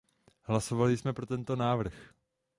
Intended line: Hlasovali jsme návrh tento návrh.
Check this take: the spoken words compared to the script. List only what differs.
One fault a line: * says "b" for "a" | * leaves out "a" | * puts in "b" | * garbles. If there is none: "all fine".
* says "pro" for "návrh"